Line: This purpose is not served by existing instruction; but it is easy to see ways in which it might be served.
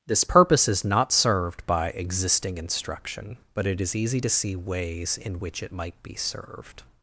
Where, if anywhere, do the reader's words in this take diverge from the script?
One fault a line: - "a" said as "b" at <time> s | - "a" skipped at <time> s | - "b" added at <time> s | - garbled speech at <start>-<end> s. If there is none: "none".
none